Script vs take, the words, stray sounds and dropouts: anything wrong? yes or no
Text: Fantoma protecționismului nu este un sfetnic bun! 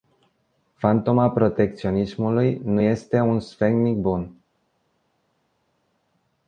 no